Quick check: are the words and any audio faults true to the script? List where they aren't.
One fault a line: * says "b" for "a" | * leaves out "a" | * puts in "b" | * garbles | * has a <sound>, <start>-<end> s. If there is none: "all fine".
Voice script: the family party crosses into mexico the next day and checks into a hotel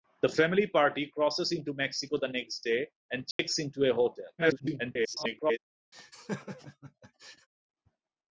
* has a dropout, 3.3-3.4 s
* garbles
* has a laugh, 5.9-7.5 s